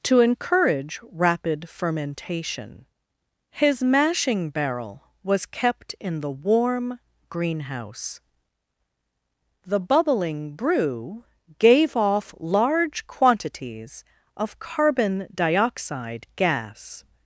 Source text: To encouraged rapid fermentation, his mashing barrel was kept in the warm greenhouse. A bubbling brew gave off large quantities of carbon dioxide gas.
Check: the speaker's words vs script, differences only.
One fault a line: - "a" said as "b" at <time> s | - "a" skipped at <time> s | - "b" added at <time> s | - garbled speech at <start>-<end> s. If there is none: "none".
- "encouraged" said as "encourage" at 0.2 s
- "A" said as "The" at 9.7 s